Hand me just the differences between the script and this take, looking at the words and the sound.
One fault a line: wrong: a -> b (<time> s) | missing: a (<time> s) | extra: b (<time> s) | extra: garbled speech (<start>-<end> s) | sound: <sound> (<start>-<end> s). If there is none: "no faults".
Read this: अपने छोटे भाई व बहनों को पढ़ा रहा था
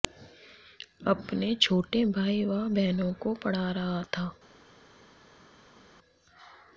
no faults